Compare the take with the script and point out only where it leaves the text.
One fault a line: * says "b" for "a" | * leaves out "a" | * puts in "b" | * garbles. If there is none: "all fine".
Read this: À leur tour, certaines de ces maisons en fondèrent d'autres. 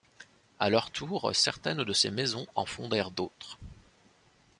all fine